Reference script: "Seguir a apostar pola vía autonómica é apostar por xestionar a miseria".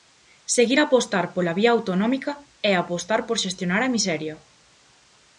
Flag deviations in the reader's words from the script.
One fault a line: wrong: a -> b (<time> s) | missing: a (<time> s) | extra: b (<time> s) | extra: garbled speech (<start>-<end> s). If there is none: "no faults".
no faults